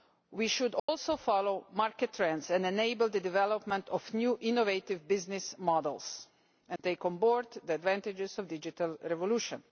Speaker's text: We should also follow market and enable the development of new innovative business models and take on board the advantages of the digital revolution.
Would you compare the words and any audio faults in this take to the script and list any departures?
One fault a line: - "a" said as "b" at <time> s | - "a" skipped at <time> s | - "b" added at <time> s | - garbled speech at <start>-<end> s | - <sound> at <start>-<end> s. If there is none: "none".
- dropout at 0.8-0.9 s
- "trends" added at 2.1 s
- dropout at 6.8-6.8 s